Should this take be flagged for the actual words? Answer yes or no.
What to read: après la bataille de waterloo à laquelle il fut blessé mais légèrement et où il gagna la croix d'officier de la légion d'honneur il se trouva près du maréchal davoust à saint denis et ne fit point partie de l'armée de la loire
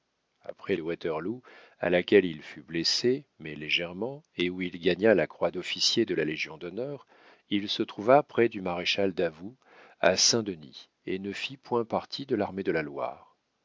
yes